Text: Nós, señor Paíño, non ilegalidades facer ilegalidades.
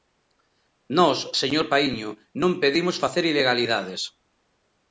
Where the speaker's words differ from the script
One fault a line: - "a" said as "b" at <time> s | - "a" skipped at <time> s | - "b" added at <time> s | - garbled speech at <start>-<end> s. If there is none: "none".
- "ilegalidades" said as "pedimos" at 2.6 s